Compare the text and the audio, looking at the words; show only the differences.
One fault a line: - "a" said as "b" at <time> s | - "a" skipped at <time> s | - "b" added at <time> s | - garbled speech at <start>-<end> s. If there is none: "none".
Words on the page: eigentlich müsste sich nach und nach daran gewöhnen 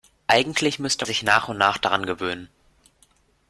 none